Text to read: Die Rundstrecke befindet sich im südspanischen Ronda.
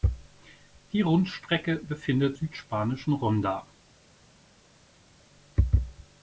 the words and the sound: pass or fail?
fail